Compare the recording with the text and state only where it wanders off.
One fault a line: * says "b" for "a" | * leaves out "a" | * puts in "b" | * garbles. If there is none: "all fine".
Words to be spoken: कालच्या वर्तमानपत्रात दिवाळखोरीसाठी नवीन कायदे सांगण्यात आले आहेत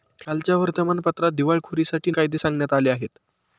* leaves out "नवीन"